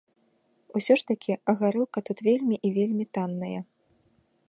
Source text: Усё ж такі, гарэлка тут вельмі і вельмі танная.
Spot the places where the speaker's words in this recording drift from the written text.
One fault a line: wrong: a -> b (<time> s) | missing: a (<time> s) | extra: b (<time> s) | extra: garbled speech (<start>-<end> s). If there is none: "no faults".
no faults